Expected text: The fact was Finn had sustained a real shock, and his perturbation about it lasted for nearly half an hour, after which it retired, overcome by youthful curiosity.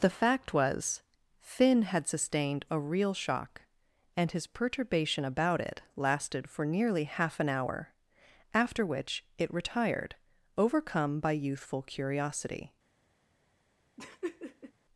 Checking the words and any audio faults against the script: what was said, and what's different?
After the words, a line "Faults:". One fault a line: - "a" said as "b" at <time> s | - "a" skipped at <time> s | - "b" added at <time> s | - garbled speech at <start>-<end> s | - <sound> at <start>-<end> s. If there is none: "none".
The fact was Finn had sustained a real shock, and his perturbation about it lasted for nearly half an hour, after which it retired, overcome by youthful curiosity.
Faults:
- laugh at 14.0-14.7 s